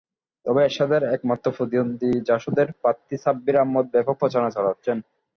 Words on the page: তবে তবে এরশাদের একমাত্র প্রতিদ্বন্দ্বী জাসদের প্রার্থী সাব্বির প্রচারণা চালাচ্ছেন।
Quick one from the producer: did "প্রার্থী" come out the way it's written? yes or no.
yes